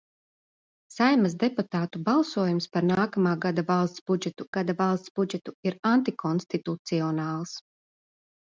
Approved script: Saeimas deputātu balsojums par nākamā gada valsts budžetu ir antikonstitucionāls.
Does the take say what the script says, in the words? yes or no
no